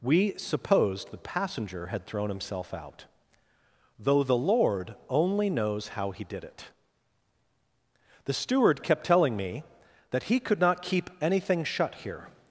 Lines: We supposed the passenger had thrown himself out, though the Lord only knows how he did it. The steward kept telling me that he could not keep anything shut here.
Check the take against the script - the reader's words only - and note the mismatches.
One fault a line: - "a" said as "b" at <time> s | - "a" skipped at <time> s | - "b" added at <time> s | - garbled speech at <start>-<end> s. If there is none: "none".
none